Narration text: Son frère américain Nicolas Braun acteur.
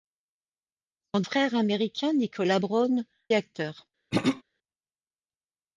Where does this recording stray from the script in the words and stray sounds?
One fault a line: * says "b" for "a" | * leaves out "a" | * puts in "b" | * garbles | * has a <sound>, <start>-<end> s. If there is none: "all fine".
* has a throat clearing, 4.1-4.4 s